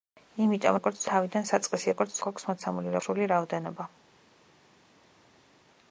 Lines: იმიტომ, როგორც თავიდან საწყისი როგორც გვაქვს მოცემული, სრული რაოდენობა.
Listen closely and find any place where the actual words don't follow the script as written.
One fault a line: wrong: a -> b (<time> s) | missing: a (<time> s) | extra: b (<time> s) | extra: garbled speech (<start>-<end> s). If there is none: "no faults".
no faults